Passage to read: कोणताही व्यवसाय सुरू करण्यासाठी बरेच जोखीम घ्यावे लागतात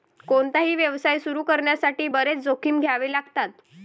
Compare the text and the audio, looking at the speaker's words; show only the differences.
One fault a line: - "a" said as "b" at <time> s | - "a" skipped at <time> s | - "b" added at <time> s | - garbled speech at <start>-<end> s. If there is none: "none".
none